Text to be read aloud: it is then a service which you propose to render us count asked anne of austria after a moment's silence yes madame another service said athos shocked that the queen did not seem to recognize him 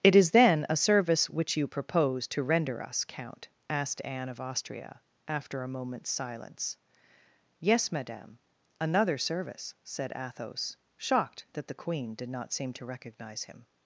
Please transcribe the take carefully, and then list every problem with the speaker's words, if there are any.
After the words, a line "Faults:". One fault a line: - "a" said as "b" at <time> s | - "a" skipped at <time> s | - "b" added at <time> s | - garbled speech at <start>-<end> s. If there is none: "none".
it is then a service which you propose to render us count asked anne of austria after a moment's silence yes madame another service said athos shocked that the queen did not seem to recognize him
Faults:
none